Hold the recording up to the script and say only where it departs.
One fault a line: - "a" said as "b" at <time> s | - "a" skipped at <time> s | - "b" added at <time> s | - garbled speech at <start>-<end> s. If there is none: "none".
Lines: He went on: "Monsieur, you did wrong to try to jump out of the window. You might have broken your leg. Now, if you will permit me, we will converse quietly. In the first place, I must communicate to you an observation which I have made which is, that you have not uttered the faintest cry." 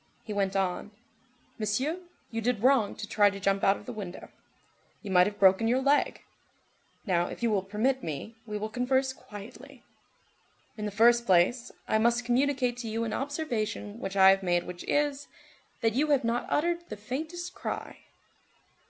none